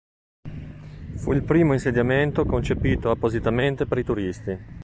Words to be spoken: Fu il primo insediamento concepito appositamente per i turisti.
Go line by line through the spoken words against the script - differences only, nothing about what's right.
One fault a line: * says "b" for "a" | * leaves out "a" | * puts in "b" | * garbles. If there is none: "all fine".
all fine